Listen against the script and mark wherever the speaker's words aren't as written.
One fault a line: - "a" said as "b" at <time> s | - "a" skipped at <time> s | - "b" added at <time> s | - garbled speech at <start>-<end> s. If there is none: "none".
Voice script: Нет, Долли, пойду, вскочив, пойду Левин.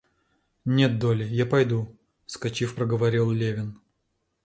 - "я" added at 1.2 s
- "пойду" said as "проговорил" at 2.7 s